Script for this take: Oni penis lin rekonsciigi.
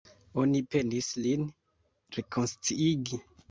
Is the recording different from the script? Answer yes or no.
no